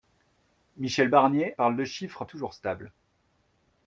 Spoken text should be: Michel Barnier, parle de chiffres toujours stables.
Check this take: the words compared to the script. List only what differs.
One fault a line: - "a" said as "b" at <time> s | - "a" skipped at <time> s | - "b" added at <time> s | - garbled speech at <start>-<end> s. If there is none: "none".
none